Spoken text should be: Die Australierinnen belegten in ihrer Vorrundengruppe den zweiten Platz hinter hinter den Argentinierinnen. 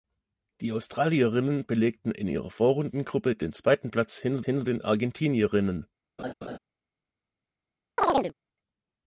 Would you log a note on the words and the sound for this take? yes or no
yes